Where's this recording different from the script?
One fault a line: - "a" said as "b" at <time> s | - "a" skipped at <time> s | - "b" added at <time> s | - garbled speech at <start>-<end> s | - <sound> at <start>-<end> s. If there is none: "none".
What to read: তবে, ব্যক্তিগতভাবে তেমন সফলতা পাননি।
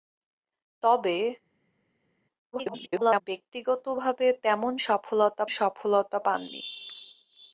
- garbled speech at 2.5-3.2 s
- "সফলতা" added at 5.6 s